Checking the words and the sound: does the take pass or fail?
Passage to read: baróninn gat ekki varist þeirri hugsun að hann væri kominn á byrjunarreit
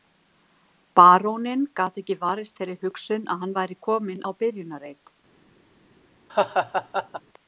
fail